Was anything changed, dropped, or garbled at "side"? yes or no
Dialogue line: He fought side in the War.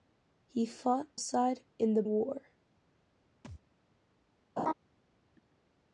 no